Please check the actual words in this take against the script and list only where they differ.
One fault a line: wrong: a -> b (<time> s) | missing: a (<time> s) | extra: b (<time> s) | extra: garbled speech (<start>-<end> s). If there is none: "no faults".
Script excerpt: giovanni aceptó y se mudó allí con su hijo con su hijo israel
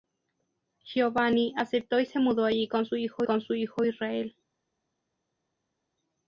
no faults